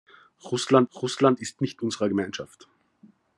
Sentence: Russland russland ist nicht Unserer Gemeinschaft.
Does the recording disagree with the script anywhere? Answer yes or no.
no